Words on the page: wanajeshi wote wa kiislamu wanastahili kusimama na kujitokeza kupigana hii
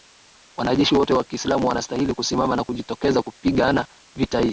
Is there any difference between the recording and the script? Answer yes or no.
yes